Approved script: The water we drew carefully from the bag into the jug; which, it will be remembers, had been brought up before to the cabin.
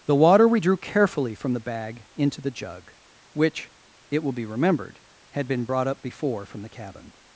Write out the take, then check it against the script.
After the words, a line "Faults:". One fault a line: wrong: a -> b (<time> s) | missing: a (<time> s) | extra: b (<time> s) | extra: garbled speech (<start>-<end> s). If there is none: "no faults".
The water we drew carefully from the bag into the jug; which, it will be remembered, had been brought up before from the cabin.
Faults:
wrong: remembers -> remembered (4.5 s)
wrong: to -> from (6.5 s)